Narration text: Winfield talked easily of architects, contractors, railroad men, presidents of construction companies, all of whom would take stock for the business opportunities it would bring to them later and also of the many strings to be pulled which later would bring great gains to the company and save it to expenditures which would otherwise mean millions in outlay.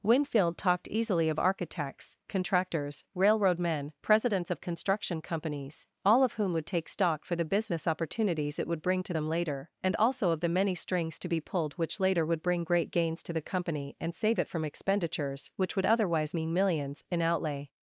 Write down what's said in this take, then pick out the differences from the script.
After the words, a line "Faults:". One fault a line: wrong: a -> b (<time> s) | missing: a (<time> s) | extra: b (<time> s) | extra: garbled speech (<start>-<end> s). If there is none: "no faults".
Winfield talked easily of architects, contractors, railroad men, presidents of construction companies, all of whom would take stock for the business opportunities it would bring to them later and also of the many strings to be pulled which later would bring great gains to the company and save it from expenditures which would otherwise mean millions in outlay.
Faults:
wrong: to -> from (14.5 s)